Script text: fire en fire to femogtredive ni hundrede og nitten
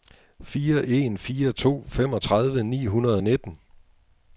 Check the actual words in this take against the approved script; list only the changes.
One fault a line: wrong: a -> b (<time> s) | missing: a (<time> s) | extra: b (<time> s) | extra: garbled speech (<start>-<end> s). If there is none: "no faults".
no faults